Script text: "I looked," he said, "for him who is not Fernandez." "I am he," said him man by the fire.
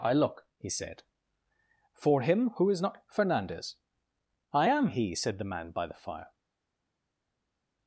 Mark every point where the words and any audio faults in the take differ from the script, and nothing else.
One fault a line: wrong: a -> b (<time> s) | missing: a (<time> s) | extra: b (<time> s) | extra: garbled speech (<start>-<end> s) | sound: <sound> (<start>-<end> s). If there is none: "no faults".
wrong: looked -> look (0.1 s)
wrong: him -> the (5.4 s)